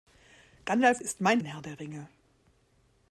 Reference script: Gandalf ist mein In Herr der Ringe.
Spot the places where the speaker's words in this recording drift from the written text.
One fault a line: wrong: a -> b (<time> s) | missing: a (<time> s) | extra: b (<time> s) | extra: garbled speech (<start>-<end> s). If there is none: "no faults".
no faults